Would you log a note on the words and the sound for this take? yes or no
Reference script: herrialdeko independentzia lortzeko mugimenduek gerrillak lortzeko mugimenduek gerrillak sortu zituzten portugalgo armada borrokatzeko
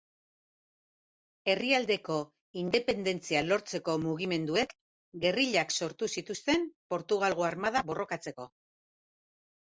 yes